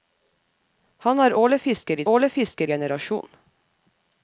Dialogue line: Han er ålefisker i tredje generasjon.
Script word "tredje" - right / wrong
wrong